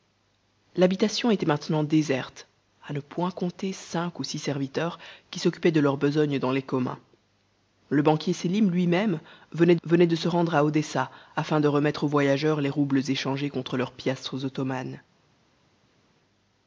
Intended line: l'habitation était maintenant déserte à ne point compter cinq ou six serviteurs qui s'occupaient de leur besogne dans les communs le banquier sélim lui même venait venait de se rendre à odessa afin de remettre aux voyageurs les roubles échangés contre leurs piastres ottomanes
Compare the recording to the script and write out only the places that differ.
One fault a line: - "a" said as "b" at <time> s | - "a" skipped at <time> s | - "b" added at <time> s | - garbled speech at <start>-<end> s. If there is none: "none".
none